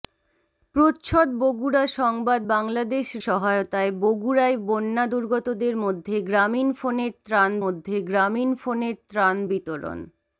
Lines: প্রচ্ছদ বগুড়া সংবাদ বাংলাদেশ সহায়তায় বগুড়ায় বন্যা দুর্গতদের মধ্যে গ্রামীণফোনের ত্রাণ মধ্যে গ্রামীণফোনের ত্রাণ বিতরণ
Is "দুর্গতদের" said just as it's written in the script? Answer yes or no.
yes